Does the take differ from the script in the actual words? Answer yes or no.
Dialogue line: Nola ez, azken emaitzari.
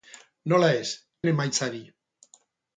yes